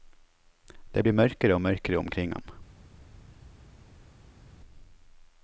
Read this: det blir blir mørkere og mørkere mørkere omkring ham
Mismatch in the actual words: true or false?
true